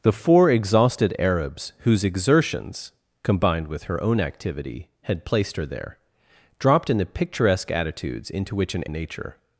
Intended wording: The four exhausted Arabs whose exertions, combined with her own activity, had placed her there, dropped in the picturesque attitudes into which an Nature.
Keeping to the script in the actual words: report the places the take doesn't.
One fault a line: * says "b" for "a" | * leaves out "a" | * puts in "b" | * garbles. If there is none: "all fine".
all fine